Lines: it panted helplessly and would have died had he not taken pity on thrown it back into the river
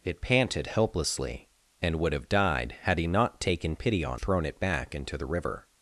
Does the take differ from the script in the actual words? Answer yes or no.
no